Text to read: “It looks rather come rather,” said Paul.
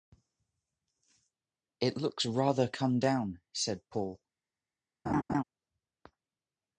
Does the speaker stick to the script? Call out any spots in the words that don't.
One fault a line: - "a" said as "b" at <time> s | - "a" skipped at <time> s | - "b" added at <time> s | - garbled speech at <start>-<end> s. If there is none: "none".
- "rather" said as "down" at 3.0 s